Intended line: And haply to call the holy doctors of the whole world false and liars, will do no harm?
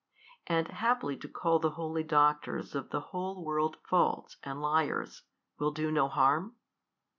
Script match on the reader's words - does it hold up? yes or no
yes